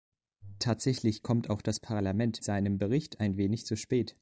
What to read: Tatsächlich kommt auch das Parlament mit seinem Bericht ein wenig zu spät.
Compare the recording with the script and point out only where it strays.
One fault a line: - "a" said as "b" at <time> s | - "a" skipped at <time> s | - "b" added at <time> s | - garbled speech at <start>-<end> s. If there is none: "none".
- "mit" skipped at 2.4 s